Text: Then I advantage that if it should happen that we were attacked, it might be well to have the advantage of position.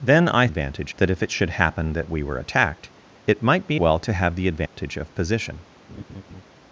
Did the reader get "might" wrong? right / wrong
right